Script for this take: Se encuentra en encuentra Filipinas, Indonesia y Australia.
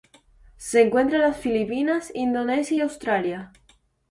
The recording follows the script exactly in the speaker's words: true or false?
false